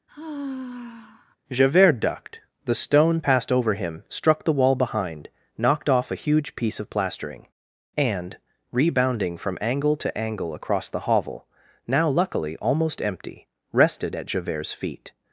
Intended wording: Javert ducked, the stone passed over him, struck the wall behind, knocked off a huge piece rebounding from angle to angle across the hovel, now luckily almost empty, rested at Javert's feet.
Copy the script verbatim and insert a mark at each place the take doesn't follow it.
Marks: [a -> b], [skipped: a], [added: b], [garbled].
Javert ducked, the stone passed over him, struck the wall behind, knocked off a huge piece [added: of plastering and] rebounding from angle to angle across the hovel, now luckily almost empty, rested at Javert's feet.